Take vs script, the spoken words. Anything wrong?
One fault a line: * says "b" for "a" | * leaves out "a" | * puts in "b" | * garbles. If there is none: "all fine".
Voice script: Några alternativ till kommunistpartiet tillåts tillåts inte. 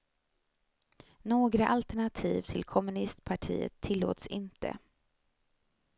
* leaves out "tillåts"